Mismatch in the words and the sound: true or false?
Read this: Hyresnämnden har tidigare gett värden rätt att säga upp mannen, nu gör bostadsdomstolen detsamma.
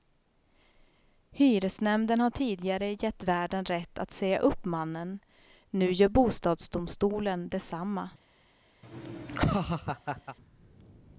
true